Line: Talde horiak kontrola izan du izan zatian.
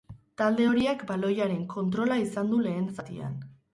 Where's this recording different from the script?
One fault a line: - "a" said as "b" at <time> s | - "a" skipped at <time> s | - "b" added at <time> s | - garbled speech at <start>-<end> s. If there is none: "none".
- "baloiaren" added at 1.1 s
- "izan" said as "lehen" at 2.7 s